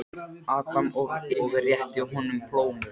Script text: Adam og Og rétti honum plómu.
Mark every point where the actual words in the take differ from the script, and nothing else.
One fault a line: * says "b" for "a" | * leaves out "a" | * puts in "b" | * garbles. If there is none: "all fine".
all fine